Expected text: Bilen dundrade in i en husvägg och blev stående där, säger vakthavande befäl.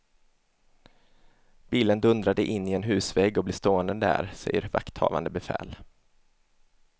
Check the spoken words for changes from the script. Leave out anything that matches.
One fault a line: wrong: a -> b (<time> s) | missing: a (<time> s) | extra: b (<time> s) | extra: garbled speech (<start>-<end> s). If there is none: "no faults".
no faults